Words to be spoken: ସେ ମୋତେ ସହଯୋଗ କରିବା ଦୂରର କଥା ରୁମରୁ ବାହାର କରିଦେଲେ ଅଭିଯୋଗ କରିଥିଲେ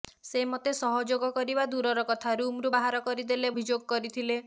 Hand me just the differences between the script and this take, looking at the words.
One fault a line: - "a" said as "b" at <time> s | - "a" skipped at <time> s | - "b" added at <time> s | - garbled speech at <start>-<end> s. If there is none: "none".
none